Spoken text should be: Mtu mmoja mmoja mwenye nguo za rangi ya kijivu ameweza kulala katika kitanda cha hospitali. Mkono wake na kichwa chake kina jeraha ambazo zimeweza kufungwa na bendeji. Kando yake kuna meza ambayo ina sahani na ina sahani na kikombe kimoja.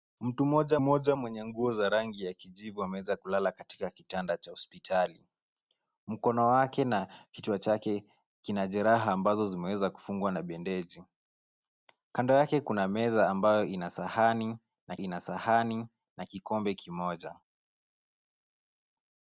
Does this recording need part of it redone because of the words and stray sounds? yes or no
no